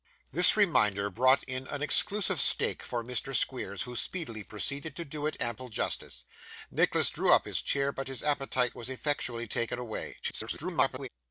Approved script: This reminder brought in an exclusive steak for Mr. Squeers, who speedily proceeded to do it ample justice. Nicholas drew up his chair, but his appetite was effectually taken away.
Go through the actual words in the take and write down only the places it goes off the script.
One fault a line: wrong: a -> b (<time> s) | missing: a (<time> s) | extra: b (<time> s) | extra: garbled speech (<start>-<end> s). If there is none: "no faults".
extra: garbled speech (10.2-11.1 s)